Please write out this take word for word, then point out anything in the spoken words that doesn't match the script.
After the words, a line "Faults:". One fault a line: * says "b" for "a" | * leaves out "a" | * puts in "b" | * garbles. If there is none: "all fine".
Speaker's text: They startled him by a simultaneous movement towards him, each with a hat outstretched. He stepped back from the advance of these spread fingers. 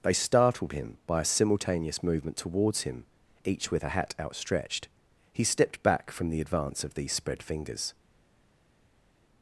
They startled him by a simultaneous movement towards him, each with a hat outstretched. He stepped back from the advance of these spread fingers.
Faults:
all fine